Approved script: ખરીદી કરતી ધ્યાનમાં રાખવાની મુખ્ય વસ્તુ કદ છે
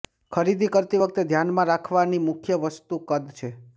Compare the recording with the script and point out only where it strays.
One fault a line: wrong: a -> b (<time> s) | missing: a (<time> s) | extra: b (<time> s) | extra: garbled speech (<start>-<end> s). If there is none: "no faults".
extra: વખતે (1.0 s)